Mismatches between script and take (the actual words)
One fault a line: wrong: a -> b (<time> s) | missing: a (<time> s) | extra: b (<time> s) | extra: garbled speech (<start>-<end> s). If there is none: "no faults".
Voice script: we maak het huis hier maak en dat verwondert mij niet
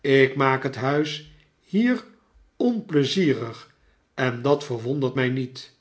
wrong: we -> ik (0.0 s)
wrong: maak -> onpleizierig (2.6 s)